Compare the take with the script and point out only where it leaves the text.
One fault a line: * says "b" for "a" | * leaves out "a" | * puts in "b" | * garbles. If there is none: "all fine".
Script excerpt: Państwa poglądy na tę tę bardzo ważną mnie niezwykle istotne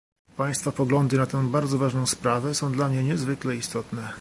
* leaves out "tę"
* puts in "sprawę są dla"